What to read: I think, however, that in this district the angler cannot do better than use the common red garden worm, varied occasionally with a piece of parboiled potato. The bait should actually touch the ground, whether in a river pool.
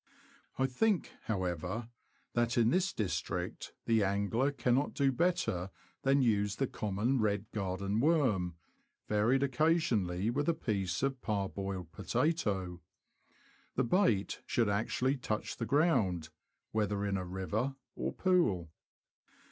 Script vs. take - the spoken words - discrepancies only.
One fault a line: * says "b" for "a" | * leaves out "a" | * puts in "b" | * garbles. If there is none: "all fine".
* puts in "or"